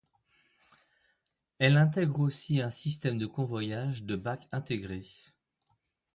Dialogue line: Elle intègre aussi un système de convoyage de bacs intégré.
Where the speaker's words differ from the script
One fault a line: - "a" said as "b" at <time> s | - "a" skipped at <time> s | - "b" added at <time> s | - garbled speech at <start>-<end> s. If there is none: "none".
none